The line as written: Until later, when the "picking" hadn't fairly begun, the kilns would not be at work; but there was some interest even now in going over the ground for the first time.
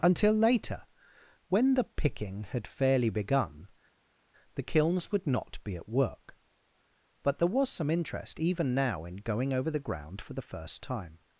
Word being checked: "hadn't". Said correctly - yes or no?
no